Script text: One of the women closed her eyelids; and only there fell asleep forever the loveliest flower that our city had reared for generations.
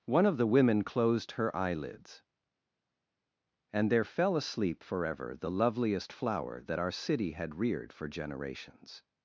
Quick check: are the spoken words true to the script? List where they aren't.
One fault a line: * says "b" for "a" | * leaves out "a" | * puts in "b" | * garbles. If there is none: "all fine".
* leaves out "only"